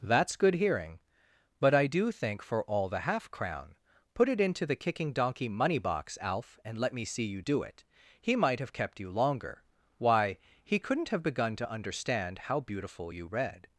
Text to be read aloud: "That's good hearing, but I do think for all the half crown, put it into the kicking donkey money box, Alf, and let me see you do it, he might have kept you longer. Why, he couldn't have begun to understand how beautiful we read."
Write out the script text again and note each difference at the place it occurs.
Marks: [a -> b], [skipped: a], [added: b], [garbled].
"That's good hearing, but I do think for all the half crown, put it into the kicking donkey money box, Alf, and let me see you do it, he might have kept you longer. Why, he couldn't have begun to understand how beautiful [we -> you] read."